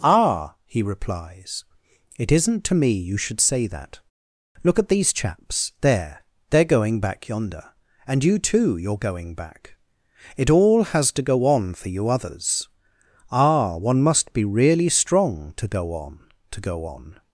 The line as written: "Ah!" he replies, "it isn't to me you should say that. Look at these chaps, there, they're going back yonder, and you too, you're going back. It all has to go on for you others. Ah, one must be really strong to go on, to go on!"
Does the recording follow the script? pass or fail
pass